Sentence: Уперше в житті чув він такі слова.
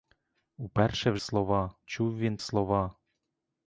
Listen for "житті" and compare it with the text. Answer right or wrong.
wrong